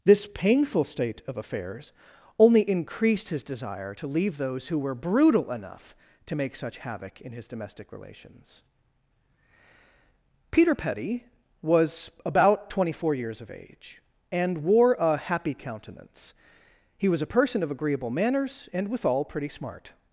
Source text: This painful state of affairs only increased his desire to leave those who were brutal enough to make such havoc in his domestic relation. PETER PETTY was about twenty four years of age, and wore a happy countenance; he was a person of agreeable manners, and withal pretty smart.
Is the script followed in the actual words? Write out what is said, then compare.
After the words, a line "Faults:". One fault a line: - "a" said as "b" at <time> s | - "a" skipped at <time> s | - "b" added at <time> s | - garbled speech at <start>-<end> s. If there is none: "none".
This painful state of affairs only increased his desire to leave those who were brutal enough to make such havoc in his domestic relations. PETER PETTY was about twenty four years of age, and wore a happy countenance; he was a person of agreeable manners, and withal pretty smart.
Faults:
- "relation" said as "relations" at 7.9 s